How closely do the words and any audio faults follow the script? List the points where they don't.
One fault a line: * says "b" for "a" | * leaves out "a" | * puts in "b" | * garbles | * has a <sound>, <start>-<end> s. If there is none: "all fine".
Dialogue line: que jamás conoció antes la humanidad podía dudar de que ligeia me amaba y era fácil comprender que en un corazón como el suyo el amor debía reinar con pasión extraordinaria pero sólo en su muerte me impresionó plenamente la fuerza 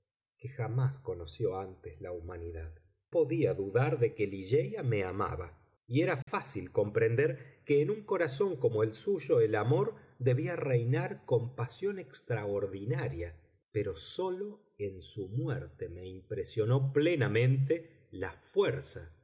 * has a dropout, 6.2-6.3 s